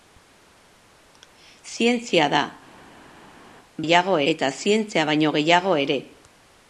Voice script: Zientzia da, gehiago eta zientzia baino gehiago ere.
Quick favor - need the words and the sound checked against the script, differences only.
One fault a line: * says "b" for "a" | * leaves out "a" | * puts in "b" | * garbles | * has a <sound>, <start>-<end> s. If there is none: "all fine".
all fine